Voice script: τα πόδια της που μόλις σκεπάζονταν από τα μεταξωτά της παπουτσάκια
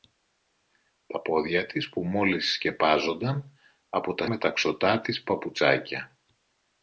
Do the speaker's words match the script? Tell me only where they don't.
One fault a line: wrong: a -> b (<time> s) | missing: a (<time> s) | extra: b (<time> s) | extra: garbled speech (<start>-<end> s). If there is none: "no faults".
no faults